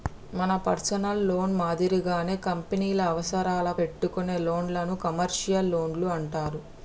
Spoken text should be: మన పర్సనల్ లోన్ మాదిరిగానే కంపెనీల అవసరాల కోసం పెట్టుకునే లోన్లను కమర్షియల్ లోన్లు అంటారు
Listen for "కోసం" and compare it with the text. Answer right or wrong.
wrong